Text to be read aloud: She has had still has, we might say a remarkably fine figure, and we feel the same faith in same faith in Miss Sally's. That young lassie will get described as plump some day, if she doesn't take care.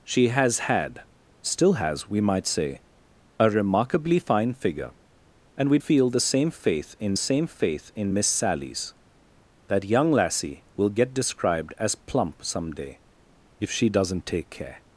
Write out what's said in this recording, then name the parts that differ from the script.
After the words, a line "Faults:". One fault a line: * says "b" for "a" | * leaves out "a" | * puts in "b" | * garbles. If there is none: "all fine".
She has had still has, we might say a remarkably fine figure, and we feel the same faith in same faith in Miss Sally's. That young lassie will get described as plump some day, if she doesn't take care.
Faults:
all fine